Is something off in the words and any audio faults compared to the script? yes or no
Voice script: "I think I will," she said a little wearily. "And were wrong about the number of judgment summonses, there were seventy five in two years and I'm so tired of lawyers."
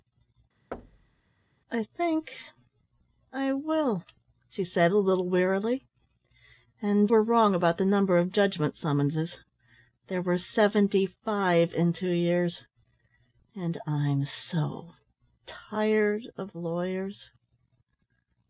yes